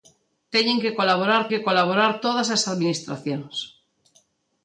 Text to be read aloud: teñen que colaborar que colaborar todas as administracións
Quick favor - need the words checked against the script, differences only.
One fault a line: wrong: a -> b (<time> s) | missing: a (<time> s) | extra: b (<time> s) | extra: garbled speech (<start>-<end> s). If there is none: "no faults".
no faults